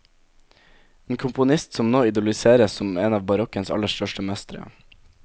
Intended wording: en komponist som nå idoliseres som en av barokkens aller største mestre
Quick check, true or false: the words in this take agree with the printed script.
true